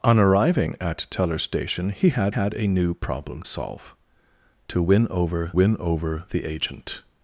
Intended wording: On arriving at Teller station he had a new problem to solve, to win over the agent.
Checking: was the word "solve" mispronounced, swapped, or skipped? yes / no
yes